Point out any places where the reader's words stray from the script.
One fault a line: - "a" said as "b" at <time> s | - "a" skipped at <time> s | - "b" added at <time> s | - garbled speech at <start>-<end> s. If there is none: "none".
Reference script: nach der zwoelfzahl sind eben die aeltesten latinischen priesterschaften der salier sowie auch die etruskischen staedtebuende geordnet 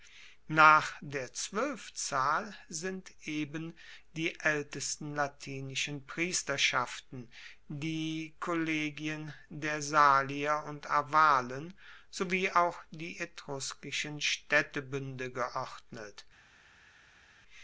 - "die kollegien" added at 7.7 s
- "und arvalen" added at 10.7 s